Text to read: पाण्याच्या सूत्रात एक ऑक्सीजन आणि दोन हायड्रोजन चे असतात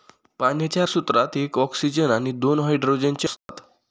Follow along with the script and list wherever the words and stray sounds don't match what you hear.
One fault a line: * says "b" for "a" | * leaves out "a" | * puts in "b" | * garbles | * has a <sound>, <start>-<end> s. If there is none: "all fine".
* has a dropout, 3.4-3.5 s